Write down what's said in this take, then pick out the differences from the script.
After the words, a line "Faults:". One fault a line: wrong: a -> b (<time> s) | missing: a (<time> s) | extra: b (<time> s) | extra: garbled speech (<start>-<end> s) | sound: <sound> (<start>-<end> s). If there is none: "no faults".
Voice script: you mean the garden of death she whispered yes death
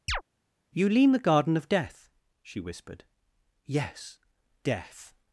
you lean the garden of death she whispered yes death
Faults:
sound: chirp (0.1-0.2 s)
wrong: mean -> lean (0.9 s)